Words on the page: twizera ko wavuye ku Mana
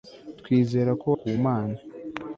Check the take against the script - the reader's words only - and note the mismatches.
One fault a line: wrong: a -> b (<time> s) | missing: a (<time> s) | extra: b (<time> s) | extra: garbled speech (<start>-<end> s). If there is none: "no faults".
missing: wavuye (1.1 s)